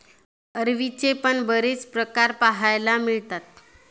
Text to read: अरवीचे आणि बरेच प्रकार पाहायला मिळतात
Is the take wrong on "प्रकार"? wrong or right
right